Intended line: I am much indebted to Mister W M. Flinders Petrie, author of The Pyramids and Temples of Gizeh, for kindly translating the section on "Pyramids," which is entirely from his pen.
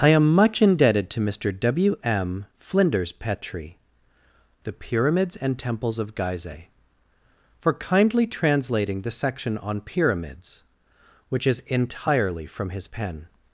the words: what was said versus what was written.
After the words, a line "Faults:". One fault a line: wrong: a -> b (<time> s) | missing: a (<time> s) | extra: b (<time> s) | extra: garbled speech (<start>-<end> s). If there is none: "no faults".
I am much indebted to Mister W M. Flinders Petrie, The Pyramids and Temples of Gizeh, for kindly translating the section on "Pyramids," which is entirely from his pen.
Faults:
missing: author of (3.8 s)